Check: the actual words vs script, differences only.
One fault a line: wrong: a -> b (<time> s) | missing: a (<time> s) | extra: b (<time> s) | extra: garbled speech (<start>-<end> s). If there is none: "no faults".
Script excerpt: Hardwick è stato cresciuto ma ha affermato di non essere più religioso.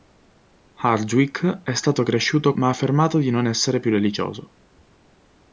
no faults